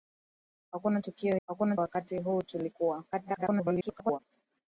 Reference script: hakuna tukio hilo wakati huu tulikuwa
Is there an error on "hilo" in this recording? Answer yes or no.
yes